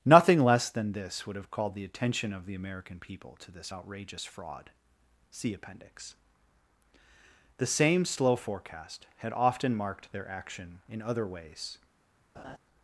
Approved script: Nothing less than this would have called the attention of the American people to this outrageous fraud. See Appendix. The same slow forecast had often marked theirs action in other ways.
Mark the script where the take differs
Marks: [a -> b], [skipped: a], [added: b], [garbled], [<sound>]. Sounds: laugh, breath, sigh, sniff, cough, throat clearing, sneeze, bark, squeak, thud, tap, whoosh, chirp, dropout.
Nothing less than this would have called the attention of the American people to this outrageous fraud. See Appendix. The same slow forecast had often marked [theirs -> their] action in other ways. [laugh]